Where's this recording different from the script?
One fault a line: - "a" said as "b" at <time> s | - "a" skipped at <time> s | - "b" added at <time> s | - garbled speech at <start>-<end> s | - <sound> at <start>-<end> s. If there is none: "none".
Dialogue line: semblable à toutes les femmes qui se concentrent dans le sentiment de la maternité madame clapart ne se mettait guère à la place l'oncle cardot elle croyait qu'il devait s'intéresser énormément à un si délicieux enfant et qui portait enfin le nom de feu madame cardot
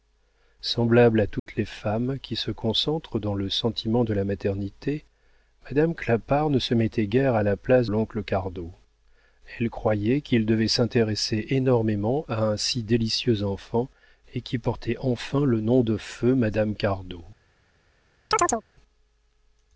- dropout at 1.4-1.5 s
- chirp at 18.3-18.6 s